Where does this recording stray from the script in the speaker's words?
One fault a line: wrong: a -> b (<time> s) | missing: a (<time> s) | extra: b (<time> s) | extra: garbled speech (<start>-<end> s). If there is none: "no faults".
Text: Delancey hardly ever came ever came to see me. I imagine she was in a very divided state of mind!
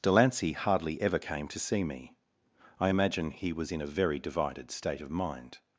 missing: ever came (1.5 s)
wrong: she -> he (3.3 s)